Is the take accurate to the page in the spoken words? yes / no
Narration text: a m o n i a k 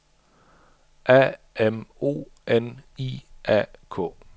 yes